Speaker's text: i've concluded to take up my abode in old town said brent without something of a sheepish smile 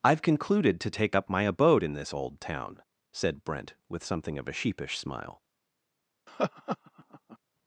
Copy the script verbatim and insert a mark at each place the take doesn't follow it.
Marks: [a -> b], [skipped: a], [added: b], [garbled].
i've concluded to take up my abode in [added: this] old town said brent [without -> with] something of a sheepish smile